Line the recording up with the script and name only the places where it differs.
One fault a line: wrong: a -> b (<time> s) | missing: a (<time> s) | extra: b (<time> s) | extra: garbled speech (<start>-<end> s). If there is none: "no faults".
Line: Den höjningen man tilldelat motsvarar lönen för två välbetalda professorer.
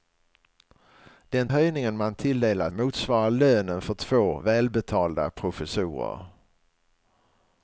no faults